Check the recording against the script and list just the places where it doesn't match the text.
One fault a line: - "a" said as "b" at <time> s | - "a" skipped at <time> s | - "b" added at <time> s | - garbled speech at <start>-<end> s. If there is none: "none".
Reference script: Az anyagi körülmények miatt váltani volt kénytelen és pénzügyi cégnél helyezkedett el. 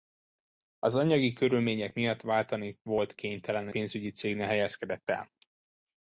- "és" skipped at 3.7 s